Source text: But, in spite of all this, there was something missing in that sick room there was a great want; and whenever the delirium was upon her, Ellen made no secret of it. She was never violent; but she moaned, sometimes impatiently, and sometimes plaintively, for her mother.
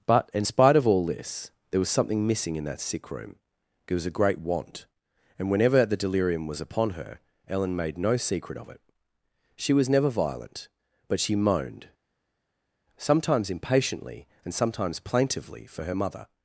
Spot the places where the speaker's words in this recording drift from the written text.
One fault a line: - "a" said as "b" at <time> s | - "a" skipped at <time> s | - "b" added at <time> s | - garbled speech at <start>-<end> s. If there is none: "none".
- "there" said as "it" at 3.9 s